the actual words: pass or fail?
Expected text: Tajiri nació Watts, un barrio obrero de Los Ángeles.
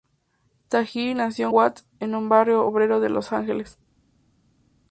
pass